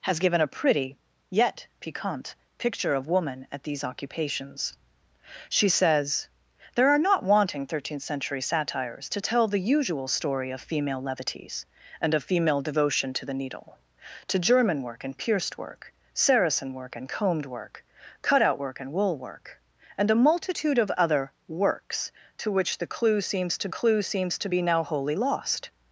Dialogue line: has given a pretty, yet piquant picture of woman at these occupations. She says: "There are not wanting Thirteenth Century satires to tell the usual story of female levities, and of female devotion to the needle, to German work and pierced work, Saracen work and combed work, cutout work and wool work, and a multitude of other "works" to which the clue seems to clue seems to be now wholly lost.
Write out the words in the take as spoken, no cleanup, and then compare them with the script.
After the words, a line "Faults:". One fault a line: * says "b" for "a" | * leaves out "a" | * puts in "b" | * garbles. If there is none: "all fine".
has given a pretty, yet piquant picture of woman at these occupations. She says: "There are not wanting Thirteenth Century satires to tell the usual story of female levities, and of female devotion to the needle, to German work and pierced work, Saracen work and combed work, cutout work and wool work, and a multitude of other "works" to which the clue seems to clue seems to be now wholly lost.
Faults:
all fine